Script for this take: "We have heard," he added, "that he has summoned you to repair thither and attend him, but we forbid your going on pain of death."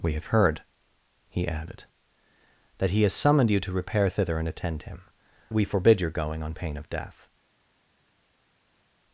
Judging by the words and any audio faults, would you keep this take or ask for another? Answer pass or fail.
fail